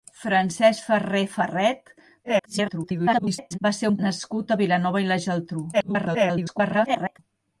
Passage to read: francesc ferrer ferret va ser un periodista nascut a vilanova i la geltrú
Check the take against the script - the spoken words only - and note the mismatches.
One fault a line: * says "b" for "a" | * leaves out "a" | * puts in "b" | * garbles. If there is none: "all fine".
* garbles
* leaves out "periodista"
* garbles